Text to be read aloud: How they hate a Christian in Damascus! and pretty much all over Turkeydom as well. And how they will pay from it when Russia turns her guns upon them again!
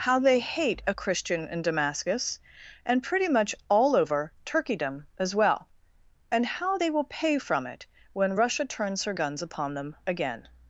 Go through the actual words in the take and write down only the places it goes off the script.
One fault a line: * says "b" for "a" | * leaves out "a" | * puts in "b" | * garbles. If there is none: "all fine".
all fine